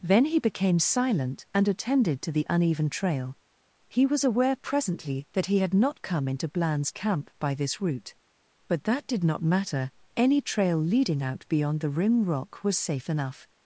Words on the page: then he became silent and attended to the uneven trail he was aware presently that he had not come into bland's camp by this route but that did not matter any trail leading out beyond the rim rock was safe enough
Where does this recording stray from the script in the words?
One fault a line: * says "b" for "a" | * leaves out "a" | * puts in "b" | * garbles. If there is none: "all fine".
all fine